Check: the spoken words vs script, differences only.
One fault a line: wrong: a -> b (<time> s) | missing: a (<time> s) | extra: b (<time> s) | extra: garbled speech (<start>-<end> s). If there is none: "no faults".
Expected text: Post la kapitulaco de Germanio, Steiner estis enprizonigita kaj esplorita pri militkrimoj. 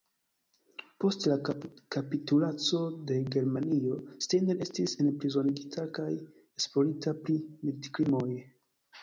no faults